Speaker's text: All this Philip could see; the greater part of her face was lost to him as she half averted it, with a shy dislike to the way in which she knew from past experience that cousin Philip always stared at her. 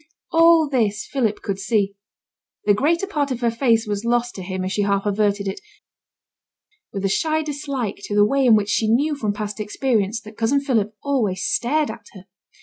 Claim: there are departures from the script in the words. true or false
false